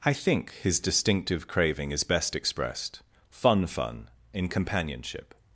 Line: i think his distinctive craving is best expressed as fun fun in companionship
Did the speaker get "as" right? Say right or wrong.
wrong